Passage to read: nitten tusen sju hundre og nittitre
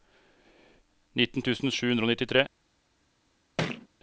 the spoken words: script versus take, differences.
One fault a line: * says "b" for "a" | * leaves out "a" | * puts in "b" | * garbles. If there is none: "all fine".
all fine